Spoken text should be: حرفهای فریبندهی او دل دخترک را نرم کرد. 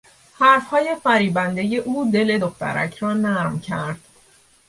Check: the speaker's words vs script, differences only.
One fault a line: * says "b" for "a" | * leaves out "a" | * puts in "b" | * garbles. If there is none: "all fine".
all fine